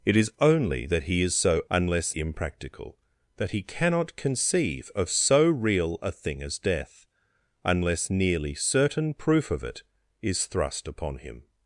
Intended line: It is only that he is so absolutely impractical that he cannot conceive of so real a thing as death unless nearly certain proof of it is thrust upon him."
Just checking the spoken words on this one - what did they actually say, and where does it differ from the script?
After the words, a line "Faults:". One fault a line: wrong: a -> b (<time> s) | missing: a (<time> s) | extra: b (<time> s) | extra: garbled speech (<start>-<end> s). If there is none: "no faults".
It is only that he is so unless impractical that he cannot conceive of so real a thing as death unless nearly certain proof of it is thrust upon him."
Faults:
wrong: absolutely -> unless (1.7 s)